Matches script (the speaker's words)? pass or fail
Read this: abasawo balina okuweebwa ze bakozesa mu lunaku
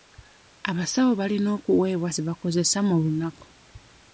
pass